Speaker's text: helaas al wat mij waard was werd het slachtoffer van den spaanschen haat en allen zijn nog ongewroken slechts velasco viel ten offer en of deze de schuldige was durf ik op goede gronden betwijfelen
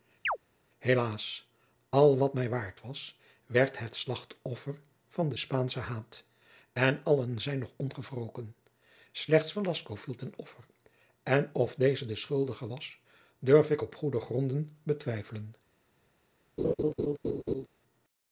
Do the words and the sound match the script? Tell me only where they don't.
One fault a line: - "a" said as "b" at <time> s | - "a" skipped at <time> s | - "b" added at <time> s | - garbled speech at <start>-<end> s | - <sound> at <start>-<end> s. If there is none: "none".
- chirp at 0.2-0.4 s
- laugh at 16.6-17.7 s